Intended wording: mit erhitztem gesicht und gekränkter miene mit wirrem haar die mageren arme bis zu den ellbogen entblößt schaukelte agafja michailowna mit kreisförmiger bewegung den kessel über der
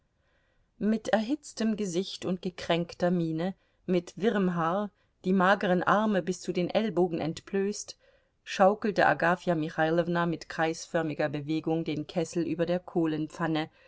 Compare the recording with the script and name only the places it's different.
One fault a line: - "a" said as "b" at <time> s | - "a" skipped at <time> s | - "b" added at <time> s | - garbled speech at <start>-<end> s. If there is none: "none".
none